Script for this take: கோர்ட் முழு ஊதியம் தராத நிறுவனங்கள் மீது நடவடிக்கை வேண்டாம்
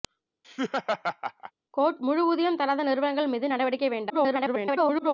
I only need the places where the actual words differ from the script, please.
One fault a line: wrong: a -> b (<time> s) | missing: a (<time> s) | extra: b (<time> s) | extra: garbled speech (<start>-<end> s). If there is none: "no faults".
extra: garbled speech (4.1-5.1 s)